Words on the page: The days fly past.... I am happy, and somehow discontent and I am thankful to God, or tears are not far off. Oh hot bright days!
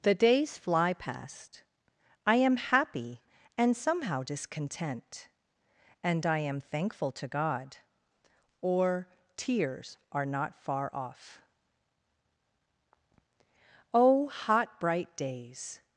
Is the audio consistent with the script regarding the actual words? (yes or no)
yes